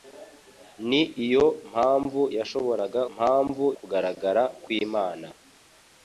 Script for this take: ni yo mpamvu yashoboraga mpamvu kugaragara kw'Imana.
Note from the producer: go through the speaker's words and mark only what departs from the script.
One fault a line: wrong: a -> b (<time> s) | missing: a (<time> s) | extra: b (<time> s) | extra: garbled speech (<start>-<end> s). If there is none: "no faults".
no faults